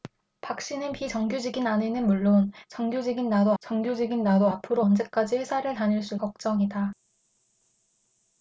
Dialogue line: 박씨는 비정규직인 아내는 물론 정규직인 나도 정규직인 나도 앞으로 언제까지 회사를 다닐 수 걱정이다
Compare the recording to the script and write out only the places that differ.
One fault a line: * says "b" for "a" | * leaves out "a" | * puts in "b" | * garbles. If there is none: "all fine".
all fine